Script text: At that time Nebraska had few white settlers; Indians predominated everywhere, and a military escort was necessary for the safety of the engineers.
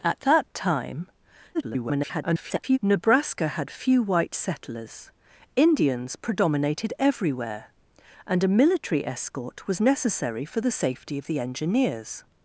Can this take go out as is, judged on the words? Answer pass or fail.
fail